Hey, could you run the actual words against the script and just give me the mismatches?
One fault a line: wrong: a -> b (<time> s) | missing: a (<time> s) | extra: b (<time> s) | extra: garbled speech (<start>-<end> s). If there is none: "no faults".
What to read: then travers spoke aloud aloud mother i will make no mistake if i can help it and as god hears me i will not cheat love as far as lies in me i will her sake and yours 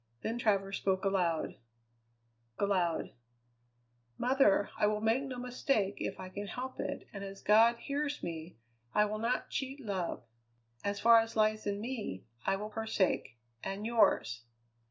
no faults